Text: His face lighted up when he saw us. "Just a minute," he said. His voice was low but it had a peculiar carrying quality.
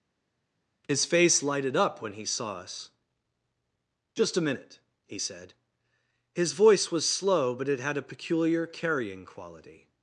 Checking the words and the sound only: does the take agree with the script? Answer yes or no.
no